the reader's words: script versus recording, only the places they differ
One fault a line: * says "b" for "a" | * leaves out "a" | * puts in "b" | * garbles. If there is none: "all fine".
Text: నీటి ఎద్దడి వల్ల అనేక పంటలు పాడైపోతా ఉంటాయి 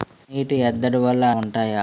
* leaves out "అనేక పంటలు పాడైపోతా"